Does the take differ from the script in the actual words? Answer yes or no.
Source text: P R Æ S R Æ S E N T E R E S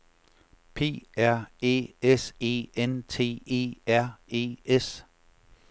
yes